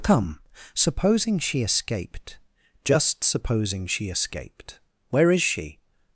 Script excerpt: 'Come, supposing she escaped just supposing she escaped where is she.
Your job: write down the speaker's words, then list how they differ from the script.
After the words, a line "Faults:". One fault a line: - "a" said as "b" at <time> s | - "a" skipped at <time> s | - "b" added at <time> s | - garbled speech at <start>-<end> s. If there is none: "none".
'Come, supposing she escaped just supposing she escaped where is she.
Faults:
none